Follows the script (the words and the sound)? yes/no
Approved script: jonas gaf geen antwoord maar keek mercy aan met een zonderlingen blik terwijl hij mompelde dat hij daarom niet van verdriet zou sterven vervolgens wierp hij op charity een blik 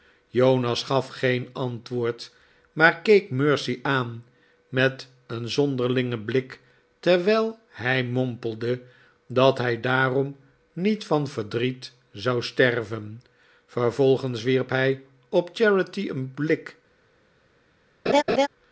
no